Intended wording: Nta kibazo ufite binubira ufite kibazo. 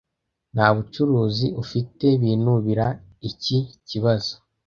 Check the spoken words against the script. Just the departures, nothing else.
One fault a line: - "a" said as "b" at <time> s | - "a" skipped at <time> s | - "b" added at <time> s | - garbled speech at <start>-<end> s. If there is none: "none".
- "kibazo" said as "bucuruzi" at 0.8 s
- "ufite" said as "iki" at 3.3 s